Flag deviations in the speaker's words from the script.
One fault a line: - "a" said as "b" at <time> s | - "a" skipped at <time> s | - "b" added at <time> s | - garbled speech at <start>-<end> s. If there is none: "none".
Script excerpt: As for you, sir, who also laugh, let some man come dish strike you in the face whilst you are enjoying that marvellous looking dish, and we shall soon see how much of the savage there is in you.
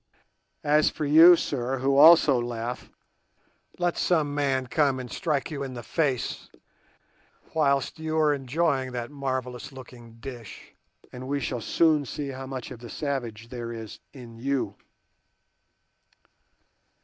- "dish" said as "and" at 5.0 s